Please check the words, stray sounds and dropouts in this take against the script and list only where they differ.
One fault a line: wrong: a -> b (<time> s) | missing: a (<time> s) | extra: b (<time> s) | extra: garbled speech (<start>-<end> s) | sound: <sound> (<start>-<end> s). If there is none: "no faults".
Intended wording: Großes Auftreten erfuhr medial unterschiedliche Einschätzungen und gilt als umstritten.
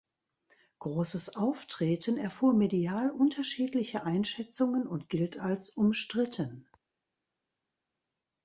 no faults